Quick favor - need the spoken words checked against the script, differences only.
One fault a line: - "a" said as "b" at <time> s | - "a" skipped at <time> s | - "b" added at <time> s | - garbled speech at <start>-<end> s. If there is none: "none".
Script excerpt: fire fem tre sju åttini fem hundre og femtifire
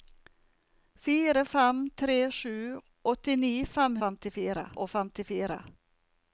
- "hundre" said as "femtifire" at 4.0 s